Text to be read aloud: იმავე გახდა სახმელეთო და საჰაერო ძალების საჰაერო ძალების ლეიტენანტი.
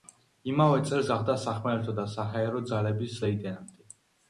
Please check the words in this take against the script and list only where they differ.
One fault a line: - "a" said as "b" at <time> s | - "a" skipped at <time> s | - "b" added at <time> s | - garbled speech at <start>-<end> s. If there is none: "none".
- "წელს" added at 0.9 s
- "საჰაერო ძალების" skipped at 3.2 s